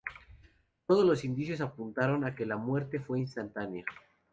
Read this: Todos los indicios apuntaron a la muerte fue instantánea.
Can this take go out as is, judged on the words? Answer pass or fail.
fail